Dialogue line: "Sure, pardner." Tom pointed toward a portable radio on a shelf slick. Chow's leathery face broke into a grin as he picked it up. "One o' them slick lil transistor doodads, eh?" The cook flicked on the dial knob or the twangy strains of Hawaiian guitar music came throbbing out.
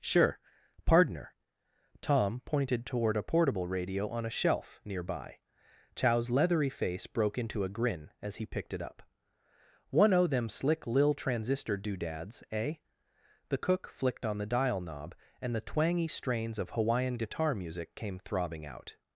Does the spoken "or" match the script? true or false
false